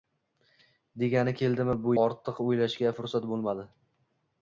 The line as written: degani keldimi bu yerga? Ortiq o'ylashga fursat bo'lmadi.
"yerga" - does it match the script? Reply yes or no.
no